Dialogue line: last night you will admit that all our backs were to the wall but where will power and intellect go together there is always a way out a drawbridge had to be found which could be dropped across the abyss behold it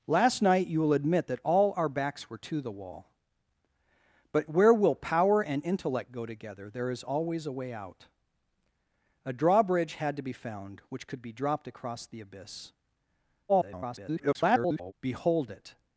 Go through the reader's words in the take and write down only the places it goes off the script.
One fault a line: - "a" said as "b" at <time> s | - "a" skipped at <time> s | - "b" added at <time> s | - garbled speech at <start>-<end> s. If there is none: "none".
- garbled speech at 13.5-14.9 s